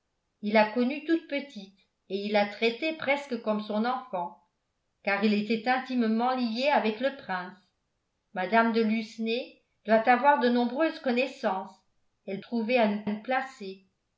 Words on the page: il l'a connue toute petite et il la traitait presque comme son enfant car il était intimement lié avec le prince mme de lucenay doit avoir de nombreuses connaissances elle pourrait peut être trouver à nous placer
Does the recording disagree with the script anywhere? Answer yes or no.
yes